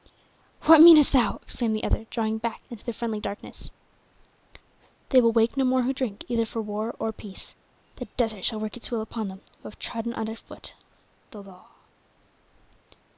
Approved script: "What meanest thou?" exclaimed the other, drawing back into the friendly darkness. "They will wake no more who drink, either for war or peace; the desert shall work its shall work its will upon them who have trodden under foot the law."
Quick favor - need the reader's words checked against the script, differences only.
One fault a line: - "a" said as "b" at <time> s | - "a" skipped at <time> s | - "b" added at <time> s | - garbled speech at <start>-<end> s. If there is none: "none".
- "shall work its" skipped at 8.9 s